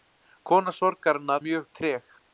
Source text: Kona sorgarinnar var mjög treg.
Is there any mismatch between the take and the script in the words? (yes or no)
yes